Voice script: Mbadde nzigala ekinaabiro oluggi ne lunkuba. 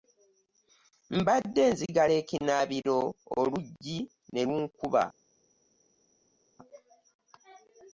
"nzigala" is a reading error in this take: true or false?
false